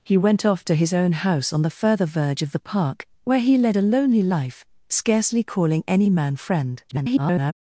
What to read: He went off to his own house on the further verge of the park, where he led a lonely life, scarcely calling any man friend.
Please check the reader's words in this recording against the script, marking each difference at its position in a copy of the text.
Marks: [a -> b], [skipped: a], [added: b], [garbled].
He went off to his own house on the further verge of the park, where he led a lonely life, scarcely calling any man friend. [garbled]